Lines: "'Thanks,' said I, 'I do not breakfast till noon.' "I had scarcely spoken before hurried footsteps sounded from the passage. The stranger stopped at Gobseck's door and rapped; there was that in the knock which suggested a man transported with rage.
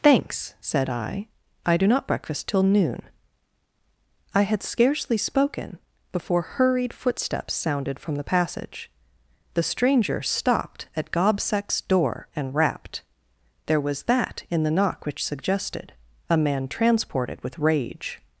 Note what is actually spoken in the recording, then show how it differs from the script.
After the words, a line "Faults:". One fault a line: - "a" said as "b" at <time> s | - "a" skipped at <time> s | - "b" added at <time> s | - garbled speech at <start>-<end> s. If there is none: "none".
"'Thanks,' said I, 'I do not breakfast till noon.' "I had scarcely spoken before hurried footsteps sounded from the passage. The stranger stopped at Gobseck's door and rapped; there was that in the knock which suggested a man transported with rage.
Faults:
none